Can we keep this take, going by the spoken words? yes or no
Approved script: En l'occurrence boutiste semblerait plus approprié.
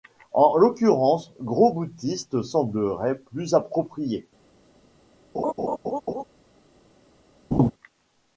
no